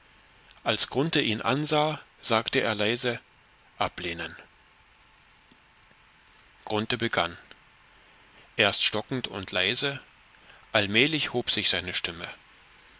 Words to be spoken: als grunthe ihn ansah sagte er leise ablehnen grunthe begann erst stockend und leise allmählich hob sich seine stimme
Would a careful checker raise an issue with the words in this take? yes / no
no